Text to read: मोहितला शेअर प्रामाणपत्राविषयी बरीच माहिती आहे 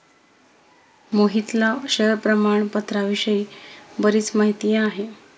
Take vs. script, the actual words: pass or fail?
pass